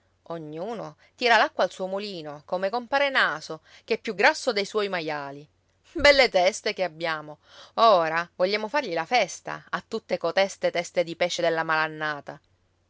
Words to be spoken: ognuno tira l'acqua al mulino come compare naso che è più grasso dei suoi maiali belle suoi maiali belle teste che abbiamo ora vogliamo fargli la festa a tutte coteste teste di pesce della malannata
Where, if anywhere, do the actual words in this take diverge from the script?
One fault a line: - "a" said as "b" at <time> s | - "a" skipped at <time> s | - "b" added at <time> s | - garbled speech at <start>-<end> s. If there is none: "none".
- "suo" added at 1.7 s
- "suoi maiali belle" skipped at 6.3 s